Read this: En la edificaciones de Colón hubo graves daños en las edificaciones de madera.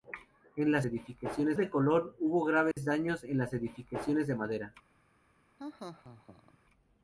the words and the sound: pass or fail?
fail